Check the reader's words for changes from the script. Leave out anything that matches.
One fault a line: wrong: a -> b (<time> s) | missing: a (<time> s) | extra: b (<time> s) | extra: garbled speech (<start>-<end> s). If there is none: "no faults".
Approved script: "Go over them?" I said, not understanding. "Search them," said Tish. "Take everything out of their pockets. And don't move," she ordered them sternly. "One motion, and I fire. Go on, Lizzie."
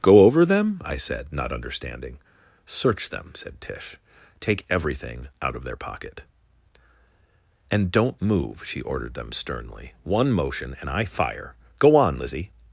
wrong: pockets -> pocket (5.8 s)